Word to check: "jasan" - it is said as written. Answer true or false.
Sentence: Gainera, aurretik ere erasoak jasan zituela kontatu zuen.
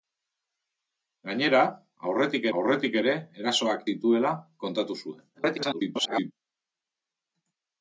false